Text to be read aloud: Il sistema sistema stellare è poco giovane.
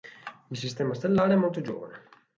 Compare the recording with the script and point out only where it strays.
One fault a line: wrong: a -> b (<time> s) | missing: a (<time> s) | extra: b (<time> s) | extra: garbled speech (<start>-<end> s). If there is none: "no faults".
missing: sistema (0.9 s)
wrong: poco -> molto (1.4 s)